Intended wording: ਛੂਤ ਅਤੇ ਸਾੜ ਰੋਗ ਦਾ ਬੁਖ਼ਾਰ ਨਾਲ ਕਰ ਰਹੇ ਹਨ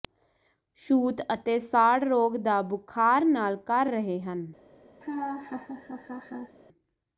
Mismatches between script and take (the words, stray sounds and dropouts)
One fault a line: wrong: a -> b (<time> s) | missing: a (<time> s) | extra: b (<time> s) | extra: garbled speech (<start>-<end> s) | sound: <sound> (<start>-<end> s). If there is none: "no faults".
sound: laugh (5.0-6.6 s)